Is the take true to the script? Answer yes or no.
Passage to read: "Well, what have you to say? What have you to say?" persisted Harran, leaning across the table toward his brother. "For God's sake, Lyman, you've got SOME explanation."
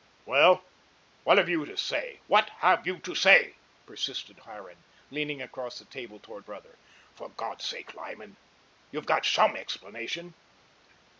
no